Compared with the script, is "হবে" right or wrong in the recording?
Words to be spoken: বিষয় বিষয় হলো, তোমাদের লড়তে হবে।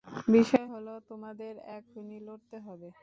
right